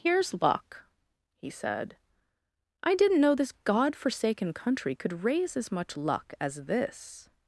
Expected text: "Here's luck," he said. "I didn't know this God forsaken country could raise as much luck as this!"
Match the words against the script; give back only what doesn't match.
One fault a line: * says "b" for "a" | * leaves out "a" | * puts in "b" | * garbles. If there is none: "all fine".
all fine